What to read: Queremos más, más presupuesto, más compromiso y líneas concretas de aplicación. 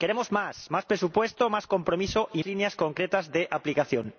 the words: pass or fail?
pass